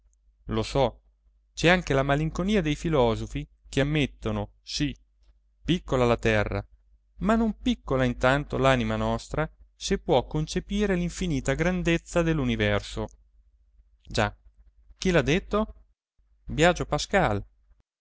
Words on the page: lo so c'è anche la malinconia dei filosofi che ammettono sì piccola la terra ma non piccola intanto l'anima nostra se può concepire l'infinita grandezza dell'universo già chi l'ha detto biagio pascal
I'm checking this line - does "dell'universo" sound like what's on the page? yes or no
yes